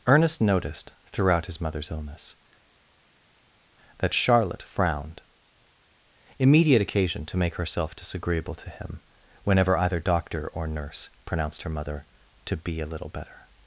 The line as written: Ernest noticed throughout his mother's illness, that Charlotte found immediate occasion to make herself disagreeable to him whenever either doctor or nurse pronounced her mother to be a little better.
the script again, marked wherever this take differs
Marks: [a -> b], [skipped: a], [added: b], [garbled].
Ernest noticed throughout his mother's illness, that Charlotte [found -> frowned] immediate occasion to make herself disagreeable to him whenever either doctor or nurse pronounced her mother to be a little better.